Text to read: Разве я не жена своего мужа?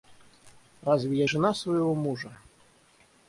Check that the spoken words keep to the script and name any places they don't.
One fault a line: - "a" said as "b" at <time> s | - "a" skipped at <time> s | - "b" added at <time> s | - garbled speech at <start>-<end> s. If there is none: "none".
- "не" skipped at 1.3 s